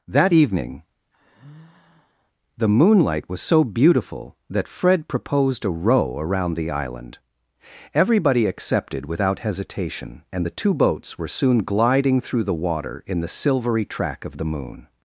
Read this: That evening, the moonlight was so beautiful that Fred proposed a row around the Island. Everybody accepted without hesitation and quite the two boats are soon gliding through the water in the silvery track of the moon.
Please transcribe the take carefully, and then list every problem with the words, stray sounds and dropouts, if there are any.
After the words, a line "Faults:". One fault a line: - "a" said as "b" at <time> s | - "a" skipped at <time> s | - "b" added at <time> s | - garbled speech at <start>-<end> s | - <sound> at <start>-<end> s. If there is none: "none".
That evening, the moonlight was so beautiful that Fred proposed a row around the Island. Everybody accepted without hesitation and the two boats were soon gliding through the water in the silvery track of the moon.
Faults:
- sigh at 1.1-2.3 s
- "quite" skipped at 10.4 s
- "are" said as "were" at 11.2 s